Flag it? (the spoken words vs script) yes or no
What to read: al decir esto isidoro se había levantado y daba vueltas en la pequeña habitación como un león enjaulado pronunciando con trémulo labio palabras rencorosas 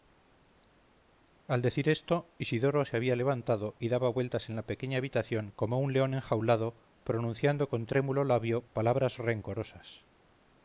no